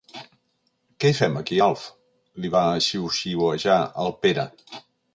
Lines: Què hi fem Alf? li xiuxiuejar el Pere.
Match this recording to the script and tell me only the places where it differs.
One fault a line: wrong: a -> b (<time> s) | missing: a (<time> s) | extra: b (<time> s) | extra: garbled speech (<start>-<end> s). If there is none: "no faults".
extra: aquí (1.4 s)
extra: va (2.6 s)